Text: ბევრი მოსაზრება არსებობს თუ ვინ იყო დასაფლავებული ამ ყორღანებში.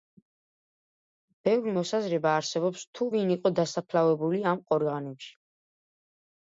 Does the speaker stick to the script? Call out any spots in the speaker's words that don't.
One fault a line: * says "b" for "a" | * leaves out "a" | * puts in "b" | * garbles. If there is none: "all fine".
all fine